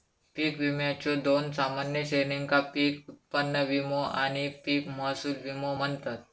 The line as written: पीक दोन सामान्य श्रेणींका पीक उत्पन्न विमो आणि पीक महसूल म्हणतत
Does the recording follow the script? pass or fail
fail